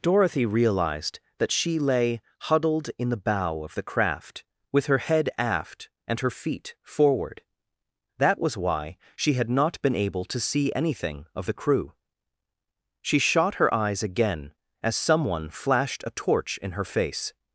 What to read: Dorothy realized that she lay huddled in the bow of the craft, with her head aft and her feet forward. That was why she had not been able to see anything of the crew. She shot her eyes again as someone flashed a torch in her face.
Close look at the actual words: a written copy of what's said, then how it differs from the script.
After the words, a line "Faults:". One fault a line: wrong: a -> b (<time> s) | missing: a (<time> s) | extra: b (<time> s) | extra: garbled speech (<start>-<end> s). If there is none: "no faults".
Dorothy realized that she lay huddled in the bow of the craft, with her head aft and her feet forward. That was why she had not been able to see anything of the crew. She shot her eyes again as someone flashed a torch in her face.
Faults:
no faults